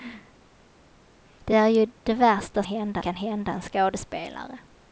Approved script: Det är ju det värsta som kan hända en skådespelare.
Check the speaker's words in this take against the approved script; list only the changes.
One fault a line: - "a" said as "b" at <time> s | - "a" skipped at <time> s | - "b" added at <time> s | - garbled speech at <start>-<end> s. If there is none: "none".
- "som" said as "hända" at 2.6 s